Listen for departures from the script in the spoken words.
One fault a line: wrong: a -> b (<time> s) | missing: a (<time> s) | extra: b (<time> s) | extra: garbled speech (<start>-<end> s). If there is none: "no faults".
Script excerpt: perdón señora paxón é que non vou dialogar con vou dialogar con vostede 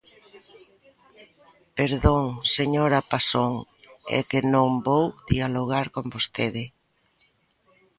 missing: vou dialogar con (6.0 s)